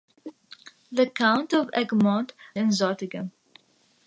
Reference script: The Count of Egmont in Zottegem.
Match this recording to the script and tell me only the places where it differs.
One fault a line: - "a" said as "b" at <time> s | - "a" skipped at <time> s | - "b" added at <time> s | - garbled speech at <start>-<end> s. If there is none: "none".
none